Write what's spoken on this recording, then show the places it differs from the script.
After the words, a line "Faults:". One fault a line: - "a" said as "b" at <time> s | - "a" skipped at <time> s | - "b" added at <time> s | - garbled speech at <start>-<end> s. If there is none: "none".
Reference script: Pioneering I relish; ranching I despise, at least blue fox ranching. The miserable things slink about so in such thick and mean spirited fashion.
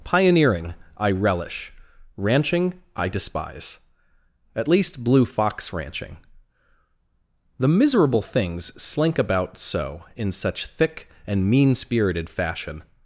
Pioneering I relish; ranching I despise, at least blue fox ranching. The miserable things slink about so in such thick and mean spirited fashion.
Faults:
none